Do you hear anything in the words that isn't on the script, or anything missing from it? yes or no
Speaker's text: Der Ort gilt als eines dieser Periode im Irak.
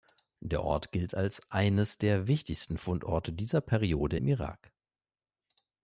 yes